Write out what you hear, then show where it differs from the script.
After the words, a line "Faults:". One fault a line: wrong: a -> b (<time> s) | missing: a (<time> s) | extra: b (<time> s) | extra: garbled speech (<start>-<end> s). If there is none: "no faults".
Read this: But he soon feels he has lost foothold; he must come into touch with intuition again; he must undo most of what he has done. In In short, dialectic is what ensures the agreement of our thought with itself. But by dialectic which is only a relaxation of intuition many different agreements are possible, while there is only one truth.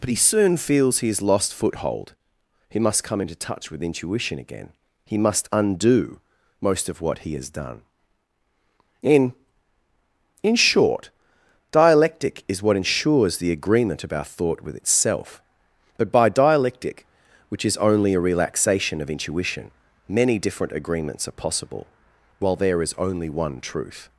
But he soon feels he has lost foothold; he must come into touch with intuition again; he must undo most of what he has done. In In short, dialectic is what ensures the agreement of our thought with itself. But by dialectic which is only a relaxation of intuition many different agreements are possible, while there is only one truth.
Faults:
no faults